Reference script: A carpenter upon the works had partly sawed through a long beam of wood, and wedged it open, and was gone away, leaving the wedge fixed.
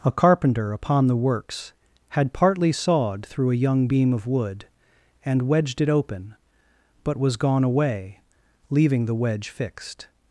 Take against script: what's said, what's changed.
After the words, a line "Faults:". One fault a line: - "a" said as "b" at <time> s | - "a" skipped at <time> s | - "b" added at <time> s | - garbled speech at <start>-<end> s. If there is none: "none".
A carpenter upon the works had partly sawed through a young beam of wood, and wedged it open, but was gone away, leaving the wedge fixed.
Faults:
- "long" said as "young" at 3.6 s
- "and" said as "but" at 7.0 s